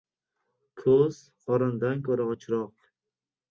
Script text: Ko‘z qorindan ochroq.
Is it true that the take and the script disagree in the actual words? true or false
true